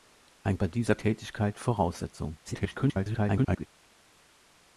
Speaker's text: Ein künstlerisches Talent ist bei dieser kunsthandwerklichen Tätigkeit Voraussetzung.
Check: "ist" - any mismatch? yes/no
yes